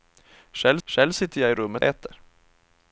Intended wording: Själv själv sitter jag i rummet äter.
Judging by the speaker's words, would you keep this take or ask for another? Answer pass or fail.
pass